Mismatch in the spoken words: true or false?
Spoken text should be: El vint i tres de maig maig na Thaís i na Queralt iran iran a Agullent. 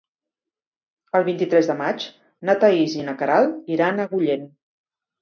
true